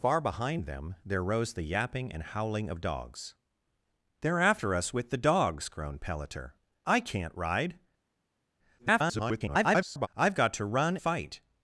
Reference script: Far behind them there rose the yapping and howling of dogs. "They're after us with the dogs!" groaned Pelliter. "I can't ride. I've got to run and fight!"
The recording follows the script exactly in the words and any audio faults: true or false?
false